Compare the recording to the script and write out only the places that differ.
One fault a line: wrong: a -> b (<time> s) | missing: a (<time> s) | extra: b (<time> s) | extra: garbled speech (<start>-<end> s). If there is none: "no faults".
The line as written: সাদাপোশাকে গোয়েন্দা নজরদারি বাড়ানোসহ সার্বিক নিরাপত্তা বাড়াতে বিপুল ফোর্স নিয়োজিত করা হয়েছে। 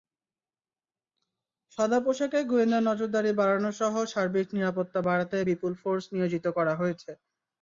no faults